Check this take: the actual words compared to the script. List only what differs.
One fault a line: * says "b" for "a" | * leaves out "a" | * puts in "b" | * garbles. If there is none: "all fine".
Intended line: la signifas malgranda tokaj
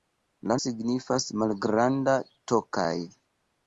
all fine